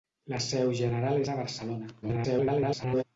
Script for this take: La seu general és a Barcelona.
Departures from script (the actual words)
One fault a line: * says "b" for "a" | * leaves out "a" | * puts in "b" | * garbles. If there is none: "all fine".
* garbles